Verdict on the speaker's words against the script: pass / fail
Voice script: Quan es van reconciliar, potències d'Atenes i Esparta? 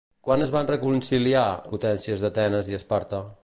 pass